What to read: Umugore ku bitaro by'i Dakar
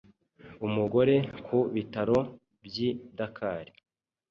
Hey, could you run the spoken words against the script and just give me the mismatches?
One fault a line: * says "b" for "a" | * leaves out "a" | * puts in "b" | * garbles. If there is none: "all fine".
all fine